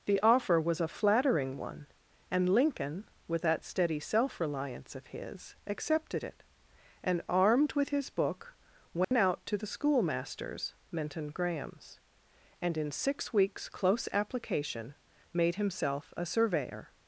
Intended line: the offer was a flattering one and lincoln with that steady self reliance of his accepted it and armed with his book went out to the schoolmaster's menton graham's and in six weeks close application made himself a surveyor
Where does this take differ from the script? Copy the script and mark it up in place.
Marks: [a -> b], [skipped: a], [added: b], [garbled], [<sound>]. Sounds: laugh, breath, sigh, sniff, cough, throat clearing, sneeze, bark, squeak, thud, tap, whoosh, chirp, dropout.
the offer was a flattering one and lincoln with that steady self reliance of his accepted it and armed with his book went [dropout] out to the schoolmaster's menton graham's and in six weeks close application made himself a surveyor